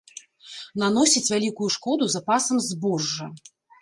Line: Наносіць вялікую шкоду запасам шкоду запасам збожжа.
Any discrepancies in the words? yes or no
yes